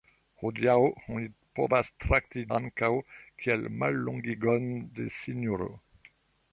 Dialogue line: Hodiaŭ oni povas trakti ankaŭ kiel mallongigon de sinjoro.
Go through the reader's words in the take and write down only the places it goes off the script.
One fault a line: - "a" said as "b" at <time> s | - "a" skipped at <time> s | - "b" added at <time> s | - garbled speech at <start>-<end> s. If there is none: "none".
none